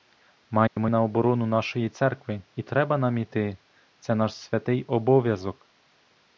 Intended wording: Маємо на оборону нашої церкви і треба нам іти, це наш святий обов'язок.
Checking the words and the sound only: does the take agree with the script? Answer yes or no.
no